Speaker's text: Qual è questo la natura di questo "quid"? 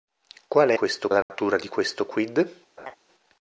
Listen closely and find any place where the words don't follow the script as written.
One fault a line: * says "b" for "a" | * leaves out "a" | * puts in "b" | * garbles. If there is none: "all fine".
all fine